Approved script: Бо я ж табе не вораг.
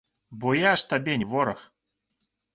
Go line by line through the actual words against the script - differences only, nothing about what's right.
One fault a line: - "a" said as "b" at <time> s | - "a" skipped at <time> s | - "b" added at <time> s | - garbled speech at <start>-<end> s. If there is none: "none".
none